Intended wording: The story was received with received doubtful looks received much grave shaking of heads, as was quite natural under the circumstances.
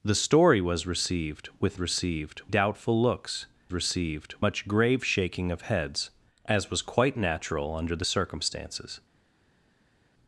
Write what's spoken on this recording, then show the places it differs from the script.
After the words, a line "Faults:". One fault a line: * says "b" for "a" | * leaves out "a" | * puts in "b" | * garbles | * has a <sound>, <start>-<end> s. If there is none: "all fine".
The story was received with received doubtful looks received much grave shaking of heads, as was quite natural under the circumstances.
Faults:
all fine